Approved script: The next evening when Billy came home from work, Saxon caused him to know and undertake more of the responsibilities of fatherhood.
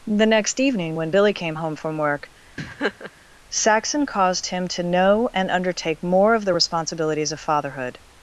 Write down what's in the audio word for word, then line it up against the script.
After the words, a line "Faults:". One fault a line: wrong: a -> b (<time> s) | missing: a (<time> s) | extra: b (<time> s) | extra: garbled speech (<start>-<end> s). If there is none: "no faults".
The next evening when Billy came home from work, Saxon caused him to know and undertake more of the responsibilities of fatherhood.
Faults:
no faults